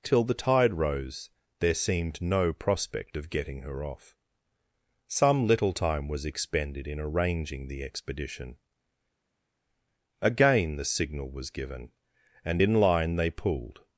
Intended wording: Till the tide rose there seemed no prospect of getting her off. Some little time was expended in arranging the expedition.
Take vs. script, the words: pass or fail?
fail